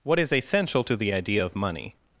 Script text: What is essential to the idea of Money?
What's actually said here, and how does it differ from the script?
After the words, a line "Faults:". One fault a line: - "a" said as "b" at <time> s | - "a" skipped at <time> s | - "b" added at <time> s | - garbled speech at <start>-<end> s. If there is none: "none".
What is essential to the idea of Money?
Faults:
none